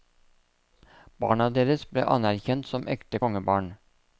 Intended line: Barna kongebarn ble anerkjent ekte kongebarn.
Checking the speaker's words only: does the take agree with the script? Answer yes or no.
no